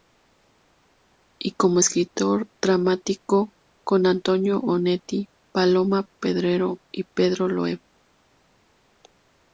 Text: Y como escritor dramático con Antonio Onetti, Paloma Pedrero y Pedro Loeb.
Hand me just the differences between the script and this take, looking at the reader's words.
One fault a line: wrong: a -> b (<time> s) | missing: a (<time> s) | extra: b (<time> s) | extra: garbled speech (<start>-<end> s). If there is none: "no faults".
no faults